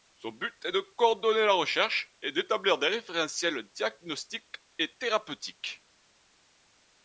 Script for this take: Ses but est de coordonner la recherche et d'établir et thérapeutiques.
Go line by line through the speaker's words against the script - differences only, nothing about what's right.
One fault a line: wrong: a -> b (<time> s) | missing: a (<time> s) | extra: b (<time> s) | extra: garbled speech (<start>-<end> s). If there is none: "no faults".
wrong: Ses -> Son (0.1 s)
extra: des référentiels diagnostiques (2.8 s)